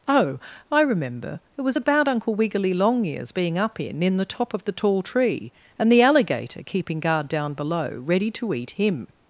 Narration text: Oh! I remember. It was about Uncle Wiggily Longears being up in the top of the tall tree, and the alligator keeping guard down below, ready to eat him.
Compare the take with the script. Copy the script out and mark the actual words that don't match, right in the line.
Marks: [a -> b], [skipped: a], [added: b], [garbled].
Oh! I remember. It was about Uncle Wiggily Longears being up in [added: in] the top of the tall tree, and the alligator keeping guard down below, ready to eat him.